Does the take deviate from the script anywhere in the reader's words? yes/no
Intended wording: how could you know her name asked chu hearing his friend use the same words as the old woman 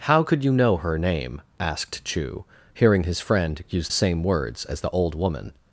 yes